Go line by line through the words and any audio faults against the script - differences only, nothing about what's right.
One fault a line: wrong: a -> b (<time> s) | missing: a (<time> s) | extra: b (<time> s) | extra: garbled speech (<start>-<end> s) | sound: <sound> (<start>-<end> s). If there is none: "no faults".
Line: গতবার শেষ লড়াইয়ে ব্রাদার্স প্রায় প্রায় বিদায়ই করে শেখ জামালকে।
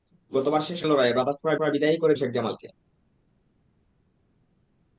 no faults